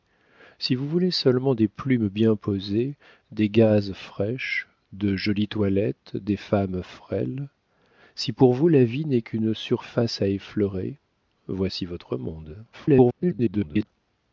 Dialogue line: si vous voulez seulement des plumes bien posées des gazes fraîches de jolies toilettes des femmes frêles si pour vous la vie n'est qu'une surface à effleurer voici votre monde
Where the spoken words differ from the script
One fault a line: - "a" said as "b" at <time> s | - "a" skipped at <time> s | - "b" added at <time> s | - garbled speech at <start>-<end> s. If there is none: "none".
- garbled speech at 12.7-13.9 s